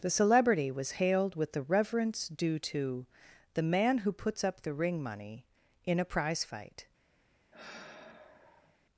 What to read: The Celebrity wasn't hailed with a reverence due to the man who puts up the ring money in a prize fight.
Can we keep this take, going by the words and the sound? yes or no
no